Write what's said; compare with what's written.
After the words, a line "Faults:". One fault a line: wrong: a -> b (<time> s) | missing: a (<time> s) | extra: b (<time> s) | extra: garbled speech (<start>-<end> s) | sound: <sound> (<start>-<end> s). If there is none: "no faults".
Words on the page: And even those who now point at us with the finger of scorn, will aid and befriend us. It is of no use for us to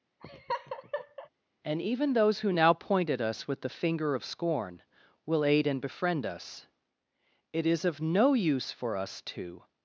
And even those who now point at us with the finger of scorn, will aid and befriend us. It is of no use for us to
Faults:
sound: laugh (0.2-1.3 s)